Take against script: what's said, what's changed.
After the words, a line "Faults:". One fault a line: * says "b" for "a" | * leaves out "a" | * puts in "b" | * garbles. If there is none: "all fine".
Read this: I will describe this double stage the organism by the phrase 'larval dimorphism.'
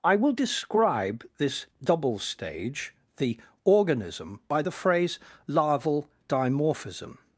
I will describe this double stage the organism by the phrase 'larval dimorphism.'
Faults:
all fine